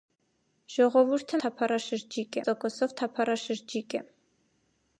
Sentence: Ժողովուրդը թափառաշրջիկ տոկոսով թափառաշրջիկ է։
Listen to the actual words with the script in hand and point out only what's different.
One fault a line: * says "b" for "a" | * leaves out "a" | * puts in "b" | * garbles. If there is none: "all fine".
all fine